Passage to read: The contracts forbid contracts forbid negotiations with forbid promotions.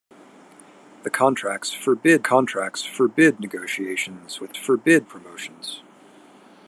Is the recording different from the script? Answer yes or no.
no